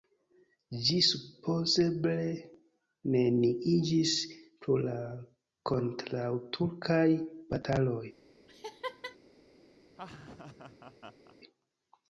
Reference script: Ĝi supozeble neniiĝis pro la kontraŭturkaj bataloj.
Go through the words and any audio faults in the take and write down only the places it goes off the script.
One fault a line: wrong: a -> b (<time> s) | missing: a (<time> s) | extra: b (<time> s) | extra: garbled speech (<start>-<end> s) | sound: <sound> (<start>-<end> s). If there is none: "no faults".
sound: laugh (8.5-9.2 s)
sound: laugh (9.9-11.4 s)